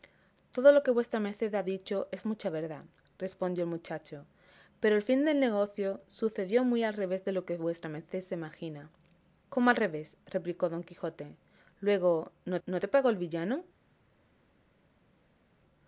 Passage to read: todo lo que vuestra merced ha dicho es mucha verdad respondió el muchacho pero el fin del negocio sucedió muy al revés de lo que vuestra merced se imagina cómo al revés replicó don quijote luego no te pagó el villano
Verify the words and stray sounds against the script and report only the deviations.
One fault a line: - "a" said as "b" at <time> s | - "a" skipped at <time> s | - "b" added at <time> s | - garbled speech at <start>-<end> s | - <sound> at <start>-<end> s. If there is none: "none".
- "no" added at 12.7 s